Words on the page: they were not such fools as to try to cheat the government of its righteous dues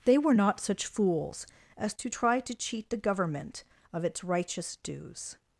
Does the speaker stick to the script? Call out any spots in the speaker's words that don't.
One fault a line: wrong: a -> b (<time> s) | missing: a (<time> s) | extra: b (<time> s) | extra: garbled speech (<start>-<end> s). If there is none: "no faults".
no faults